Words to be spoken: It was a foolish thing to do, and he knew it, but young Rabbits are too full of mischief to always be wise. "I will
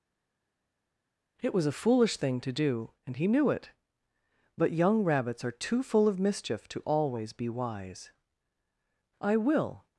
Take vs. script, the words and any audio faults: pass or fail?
pass